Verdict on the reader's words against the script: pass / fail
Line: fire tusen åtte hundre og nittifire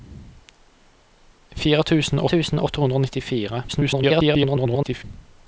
fail